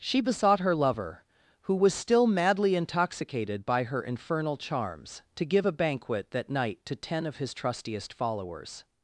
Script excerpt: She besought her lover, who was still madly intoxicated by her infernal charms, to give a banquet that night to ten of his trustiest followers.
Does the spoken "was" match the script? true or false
true